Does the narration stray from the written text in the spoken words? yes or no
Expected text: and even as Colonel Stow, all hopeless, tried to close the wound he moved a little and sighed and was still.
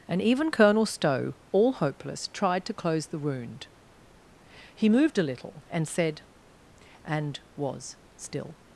yes